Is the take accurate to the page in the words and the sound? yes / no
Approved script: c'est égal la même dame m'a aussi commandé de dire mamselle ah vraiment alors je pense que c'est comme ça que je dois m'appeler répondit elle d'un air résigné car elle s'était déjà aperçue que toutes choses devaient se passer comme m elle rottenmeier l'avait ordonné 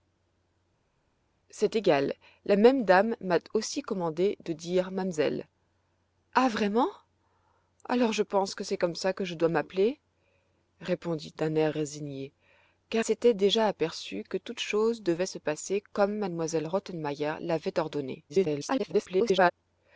no